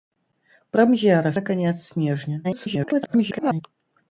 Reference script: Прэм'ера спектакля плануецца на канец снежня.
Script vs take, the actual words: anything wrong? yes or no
yes